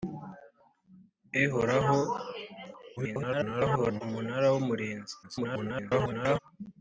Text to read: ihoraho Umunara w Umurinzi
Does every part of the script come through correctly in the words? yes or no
no